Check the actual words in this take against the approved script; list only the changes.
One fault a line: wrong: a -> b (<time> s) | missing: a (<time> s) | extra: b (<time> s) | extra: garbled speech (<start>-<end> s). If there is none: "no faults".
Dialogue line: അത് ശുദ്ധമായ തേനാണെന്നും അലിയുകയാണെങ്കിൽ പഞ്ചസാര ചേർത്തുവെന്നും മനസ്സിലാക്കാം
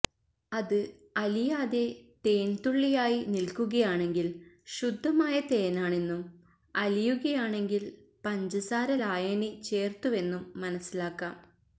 extra: അലിയാതെ തേൻതുള്ളിയായി നിൽക്കുകയാണെങ്കിൽ (1.2 s)
extra: ലായനി (9.0 s)